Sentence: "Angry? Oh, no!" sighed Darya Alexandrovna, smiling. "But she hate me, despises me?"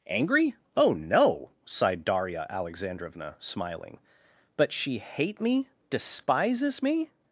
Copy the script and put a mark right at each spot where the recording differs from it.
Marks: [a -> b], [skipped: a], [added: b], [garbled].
"Angry? Oh, no!" sighed Darya Alexandrovna, smiling. "But she hate me, despises me?"